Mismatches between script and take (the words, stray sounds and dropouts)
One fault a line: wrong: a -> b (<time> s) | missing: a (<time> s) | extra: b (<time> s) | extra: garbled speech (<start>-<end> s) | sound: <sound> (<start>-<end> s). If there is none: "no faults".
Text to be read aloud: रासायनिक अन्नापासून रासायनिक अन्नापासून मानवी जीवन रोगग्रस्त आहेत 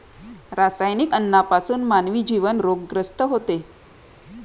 missing: रासायनिक अन्नापासून (1.8 s)
wrong: आहेत -> होते (3.2 s)